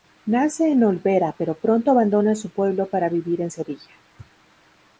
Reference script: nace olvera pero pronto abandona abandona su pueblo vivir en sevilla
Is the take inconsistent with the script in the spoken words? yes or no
yes